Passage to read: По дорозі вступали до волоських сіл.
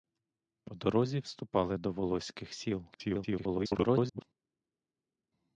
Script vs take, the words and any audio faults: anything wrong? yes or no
yes